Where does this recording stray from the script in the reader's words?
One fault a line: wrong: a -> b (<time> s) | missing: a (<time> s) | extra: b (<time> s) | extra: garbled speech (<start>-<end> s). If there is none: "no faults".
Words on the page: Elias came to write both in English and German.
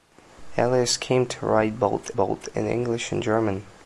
extra: both (2.2 s)